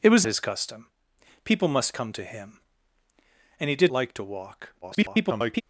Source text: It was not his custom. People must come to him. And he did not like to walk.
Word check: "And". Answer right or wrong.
right